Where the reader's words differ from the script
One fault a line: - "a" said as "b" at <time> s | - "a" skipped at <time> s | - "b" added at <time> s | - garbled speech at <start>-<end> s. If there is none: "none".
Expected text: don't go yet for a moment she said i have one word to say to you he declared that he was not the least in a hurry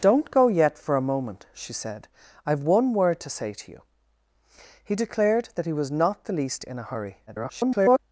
- garbled speech at 7.3-8.0 s